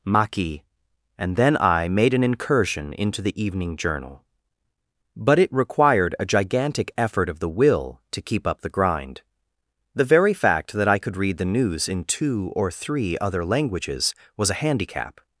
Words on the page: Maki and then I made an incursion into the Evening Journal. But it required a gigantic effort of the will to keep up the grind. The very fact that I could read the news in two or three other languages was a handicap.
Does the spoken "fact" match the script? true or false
true